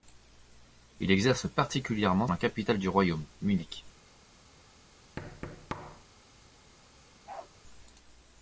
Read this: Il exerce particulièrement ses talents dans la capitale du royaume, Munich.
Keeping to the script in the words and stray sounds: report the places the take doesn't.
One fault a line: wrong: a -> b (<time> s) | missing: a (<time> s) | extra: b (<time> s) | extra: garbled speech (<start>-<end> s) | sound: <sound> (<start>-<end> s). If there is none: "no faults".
missing: ses talents dans (2.3 s)
sound: thud (5.2-6.0 s)
sound: bark (7.3-7.5 s)